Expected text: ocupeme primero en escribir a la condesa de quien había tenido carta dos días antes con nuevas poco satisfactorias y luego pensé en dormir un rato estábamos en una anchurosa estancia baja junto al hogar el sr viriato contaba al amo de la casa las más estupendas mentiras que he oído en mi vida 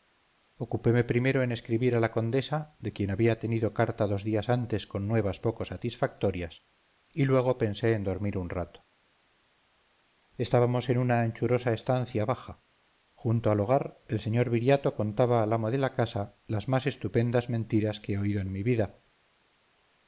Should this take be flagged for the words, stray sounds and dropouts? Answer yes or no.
no